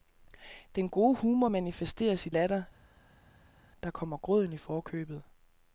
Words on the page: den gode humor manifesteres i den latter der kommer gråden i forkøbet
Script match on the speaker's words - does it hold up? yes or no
no